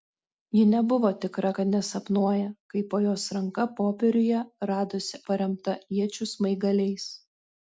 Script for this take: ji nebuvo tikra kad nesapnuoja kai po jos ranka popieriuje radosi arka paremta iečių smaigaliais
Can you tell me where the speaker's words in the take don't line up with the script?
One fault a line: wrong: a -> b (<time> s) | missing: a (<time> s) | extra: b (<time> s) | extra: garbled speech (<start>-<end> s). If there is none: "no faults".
missing: arka (5.2 s)